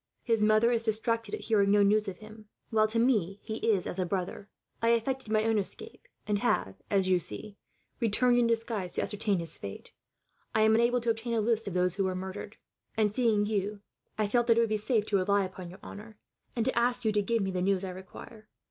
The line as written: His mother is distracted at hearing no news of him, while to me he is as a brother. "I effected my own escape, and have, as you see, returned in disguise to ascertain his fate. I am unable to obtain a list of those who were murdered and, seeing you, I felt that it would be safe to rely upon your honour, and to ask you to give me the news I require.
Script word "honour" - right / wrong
right